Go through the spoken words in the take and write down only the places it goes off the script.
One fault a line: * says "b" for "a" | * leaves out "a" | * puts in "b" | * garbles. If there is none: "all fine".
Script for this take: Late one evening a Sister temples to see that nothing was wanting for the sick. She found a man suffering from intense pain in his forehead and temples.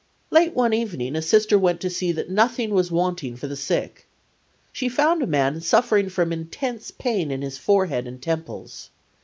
* says "went" for "temples"